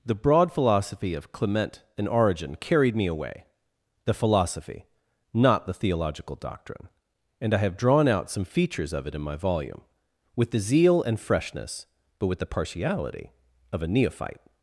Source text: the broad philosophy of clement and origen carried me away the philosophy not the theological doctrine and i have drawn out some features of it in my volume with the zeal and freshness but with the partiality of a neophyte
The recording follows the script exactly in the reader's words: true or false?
true